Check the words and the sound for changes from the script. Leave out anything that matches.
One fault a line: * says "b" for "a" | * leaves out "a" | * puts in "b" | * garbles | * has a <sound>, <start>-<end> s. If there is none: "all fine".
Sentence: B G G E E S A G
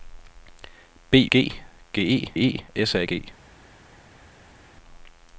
all fine